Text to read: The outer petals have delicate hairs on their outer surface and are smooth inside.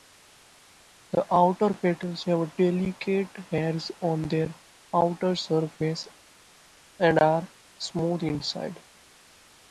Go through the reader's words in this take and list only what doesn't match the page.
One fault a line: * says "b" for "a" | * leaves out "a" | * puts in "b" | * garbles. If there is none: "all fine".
all fine